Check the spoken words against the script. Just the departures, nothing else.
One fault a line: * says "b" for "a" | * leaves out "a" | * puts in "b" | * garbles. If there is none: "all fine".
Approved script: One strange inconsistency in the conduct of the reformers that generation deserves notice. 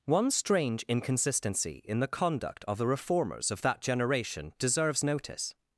* puts in "of"